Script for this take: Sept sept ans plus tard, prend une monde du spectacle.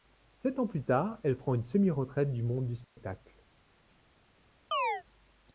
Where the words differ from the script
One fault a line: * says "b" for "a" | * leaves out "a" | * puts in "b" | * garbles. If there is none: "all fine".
* leaves out "sept"
* puts in "elle"
* puts in "semi retraite du"